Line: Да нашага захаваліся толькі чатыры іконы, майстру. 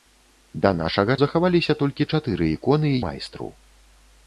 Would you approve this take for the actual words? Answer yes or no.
yes